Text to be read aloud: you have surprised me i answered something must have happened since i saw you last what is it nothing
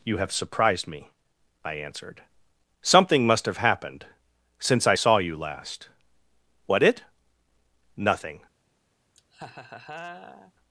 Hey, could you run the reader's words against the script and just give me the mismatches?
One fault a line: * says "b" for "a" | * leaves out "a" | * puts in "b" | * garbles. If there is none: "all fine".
* leaves out "is"